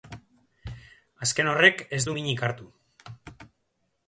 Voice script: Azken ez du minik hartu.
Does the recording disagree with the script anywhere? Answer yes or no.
yes